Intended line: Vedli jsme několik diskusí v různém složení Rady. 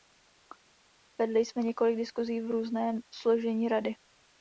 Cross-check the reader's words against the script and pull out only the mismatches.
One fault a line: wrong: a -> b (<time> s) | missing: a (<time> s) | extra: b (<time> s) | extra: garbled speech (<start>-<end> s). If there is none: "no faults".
no faults